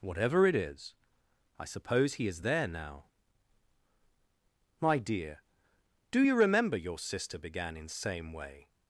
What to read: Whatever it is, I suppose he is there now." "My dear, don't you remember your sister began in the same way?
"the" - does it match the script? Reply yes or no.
no